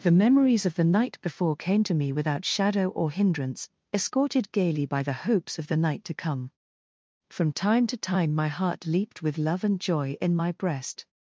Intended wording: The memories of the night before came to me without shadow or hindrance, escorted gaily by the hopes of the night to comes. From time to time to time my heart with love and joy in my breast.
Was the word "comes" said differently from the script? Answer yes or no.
yes